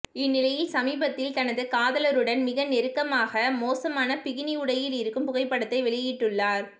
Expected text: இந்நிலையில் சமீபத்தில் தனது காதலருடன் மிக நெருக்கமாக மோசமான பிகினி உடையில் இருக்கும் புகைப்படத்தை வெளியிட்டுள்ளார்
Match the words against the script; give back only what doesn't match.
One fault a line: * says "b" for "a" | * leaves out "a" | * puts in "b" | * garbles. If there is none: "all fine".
all fine